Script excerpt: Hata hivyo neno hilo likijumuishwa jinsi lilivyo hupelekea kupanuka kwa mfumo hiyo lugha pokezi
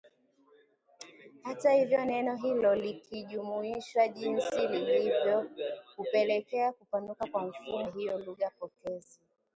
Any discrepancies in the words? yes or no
no